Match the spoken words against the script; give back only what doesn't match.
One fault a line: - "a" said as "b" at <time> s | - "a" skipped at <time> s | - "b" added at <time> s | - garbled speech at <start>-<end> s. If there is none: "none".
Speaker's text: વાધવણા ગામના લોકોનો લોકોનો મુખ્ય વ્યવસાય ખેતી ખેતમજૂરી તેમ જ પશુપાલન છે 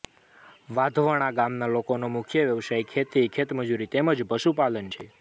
- "લોકોનો" skipped at 2.1 s